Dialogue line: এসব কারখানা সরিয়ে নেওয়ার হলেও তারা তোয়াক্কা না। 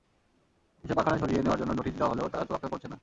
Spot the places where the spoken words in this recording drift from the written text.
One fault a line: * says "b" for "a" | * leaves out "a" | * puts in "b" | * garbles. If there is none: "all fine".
* puts in "জন্য নোটিশ দেওয়া"
* puts in "করছে"